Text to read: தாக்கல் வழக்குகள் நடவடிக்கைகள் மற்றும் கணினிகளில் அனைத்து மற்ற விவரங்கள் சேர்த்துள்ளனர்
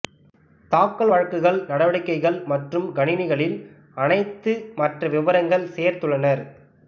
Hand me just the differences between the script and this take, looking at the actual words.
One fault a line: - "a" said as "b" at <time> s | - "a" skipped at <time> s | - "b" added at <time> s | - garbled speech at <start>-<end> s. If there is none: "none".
none